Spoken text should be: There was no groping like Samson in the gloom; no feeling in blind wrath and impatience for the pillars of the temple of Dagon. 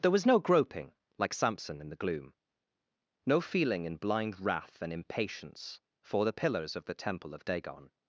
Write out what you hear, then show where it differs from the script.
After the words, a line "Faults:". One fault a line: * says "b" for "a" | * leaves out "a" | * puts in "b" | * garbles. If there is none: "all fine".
There was no groping like Samson in the gloom; no feeling in blind wrath and impatience for the pillars of the temple of Dagon.
Faults:
all fine